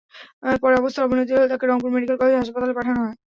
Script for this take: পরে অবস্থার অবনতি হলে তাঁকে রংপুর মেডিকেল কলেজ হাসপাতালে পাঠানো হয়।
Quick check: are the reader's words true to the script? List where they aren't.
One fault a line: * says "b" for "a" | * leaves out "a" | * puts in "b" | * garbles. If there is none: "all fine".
all fine